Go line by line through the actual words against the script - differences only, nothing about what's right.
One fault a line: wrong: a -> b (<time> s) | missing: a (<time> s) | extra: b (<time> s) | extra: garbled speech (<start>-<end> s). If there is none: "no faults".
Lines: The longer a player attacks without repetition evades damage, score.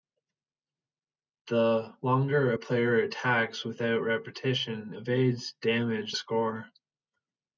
no faults